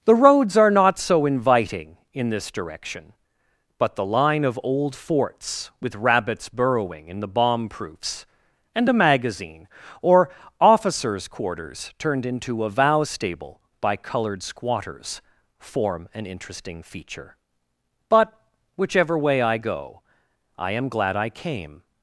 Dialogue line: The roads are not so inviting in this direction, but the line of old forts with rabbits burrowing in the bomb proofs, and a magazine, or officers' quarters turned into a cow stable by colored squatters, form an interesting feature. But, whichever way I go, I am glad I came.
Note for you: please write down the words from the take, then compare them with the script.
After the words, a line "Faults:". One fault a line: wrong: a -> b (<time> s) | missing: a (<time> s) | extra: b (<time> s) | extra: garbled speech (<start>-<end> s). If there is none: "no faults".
The roads are not so inviting in this direction, but the line of old forts with rabbits burrowing in the bomb proofs, and a magazine, or officers' quarters turned into a vow stable by colored squatters, form an interesting feature. But, whichever way I go, I am glad I came.
Faults:
wrong: cow -> vow (12.7 s)